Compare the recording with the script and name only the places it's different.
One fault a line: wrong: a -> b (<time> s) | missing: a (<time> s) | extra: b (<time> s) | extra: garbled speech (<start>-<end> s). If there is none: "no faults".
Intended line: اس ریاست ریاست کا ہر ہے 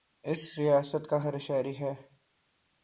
missing: ریاست (1.1 s)
extra: شہری (1.4 s)